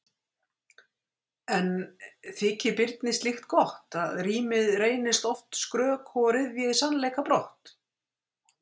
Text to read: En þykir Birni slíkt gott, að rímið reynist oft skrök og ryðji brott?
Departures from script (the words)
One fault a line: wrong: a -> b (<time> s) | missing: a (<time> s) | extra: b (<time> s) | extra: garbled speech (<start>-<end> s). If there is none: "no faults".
extra: sannleika (6.8 s)